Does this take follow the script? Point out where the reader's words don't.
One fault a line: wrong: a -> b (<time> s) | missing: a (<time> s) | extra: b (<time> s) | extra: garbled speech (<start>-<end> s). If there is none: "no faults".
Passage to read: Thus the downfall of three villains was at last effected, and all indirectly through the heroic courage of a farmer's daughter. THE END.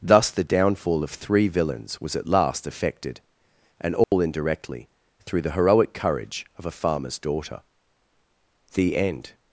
no faults